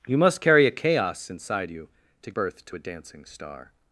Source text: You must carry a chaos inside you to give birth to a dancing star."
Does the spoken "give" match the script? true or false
false